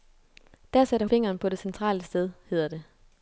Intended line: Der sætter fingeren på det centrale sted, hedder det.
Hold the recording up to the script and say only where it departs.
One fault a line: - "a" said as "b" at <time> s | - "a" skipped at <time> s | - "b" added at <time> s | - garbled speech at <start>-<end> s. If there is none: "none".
none